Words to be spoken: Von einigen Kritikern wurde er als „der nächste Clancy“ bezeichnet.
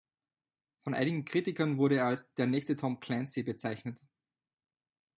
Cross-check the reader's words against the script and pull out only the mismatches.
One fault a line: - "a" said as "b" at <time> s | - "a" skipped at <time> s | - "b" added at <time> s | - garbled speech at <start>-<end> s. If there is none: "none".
- "Tom" added at 2.8 s